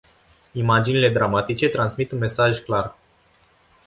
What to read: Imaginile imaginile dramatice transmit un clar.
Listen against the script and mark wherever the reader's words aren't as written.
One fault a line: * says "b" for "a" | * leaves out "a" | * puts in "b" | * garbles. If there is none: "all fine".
* leaves out "imaginile"
* puts in "mesaj"